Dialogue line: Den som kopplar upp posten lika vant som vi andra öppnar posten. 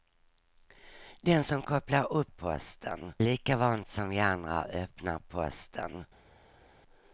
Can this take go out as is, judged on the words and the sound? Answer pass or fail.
pass